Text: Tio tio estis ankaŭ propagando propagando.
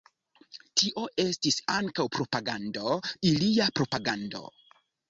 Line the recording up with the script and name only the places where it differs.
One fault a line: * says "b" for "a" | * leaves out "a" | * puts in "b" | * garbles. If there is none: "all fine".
* leaves out "tio"
* puts in "ilia"